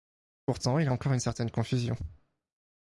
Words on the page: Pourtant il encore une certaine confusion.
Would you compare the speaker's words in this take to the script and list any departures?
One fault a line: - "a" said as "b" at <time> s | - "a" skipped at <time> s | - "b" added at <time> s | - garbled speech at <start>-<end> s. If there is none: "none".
none